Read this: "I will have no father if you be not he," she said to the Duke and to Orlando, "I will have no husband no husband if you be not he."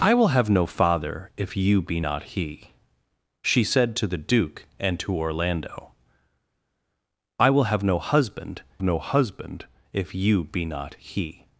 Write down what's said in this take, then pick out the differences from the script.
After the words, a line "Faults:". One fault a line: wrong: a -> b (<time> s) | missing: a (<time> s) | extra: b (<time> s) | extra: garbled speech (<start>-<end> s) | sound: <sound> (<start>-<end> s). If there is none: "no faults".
"I will have no father if you be not he," she said to the Duke and to Orlando, "I will have no husband no husband if you be not he."
Faults:
no faults